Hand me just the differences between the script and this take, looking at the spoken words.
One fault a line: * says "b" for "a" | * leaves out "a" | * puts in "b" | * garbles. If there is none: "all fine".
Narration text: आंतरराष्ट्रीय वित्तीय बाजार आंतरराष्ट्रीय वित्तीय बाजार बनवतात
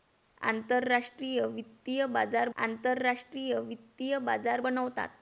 all fine